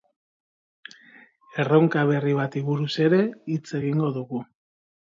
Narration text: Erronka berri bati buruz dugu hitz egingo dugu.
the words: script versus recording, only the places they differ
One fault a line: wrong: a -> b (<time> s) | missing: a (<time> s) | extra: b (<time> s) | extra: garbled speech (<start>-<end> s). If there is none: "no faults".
wrong: dugu -> ere (3.1 s)